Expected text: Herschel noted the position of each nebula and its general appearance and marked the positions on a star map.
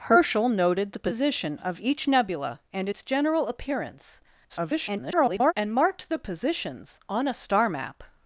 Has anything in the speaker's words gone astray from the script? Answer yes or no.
yes